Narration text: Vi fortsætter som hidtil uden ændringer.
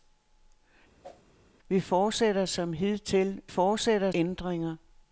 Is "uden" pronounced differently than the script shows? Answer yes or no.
yes